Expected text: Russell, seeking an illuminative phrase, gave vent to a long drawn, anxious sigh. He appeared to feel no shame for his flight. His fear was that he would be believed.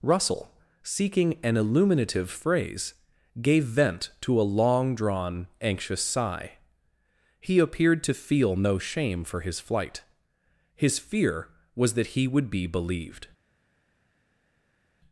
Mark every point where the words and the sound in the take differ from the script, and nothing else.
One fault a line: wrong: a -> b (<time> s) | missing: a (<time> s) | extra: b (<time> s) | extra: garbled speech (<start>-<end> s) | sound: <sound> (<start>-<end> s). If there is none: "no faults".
no faults